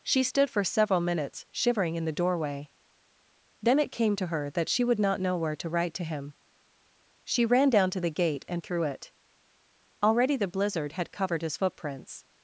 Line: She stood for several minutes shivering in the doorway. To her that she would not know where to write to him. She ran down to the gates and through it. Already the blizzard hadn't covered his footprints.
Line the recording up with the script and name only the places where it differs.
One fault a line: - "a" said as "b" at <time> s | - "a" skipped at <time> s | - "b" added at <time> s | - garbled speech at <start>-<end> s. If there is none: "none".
- "Then it came" added at 3.6 s
- "gates" said as "gate" at 8.1 s
- "hadn't" said as "had" at 10.9 s